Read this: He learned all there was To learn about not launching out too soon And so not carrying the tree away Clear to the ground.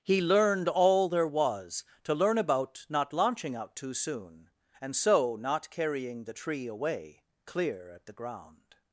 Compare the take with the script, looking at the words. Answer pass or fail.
fail